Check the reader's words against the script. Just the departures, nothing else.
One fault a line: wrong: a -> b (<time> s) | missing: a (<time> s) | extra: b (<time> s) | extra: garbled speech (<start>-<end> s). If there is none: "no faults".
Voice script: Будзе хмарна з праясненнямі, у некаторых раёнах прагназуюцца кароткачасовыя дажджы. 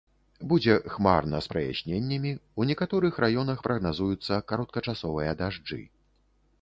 no faults